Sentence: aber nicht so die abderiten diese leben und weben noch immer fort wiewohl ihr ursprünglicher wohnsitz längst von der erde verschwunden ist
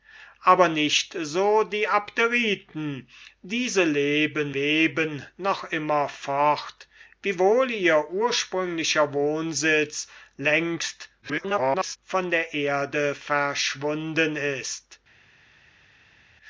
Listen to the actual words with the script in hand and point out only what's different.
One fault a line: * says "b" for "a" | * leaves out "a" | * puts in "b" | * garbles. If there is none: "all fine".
* leaves out "und"
* garbles